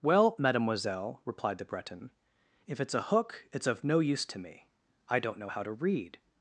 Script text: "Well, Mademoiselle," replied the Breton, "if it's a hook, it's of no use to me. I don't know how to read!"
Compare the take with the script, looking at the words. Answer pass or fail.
pass